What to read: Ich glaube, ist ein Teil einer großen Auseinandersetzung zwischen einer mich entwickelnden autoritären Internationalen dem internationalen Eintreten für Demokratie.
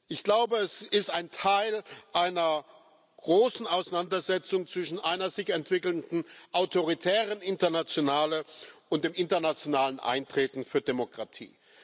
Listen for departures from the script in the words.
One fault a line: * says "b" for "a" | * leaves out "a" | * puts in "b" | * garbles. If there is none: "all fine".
* puts in "es"
* says "sich" for "mich"
* puts in "und"